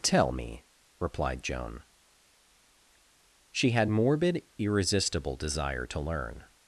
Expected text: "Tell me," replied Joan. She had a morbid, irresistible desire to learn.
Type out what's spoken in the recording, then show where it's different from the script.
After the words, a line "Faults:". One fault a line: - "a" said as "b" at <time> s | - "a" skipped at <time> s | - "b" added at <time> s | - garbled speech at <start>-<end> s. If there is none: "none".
"Tell me," replied Joan. She had morbid, irresistible desire to learn.
Faults:
- "a" skipped at 3.9 s